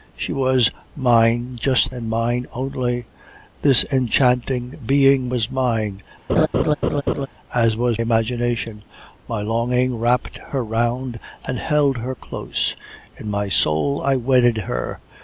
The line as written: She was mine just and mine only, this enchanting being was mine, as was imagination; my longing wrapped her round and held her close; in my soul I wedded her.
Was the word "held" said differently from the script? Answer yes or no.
no